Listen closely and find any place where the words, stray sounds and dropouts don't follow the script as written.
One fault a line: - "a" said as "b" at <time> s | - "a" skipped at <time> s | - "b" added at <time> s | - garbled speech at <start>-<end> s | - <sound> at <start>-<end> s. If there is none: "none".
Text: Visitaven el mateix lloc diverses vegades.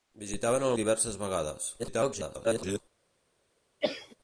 - "mateix lloc" skipped at 0.7 s
- garbled speech at 1.8-2.8 s
- cough at 3.8-4.2 s